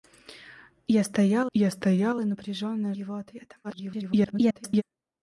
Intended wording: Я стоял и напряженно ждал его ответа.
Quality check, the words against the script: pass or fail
fail